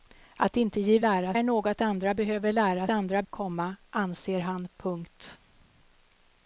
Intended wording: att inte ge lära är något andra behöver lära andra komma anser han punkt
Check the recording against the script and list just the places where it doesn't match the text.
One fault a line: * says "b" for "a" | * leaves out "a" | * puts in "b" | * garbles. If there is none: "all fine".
all fine